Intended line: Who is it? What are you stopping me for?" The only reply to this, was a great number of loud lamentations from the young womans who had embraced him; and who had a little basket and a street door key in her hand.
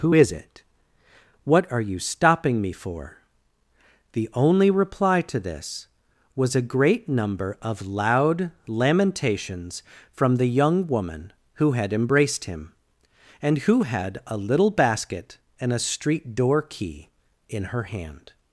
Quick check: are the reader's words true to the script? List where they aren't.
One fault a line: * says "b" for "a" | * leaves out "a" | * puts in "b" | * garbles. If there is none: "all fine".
* says "woman" for "womans"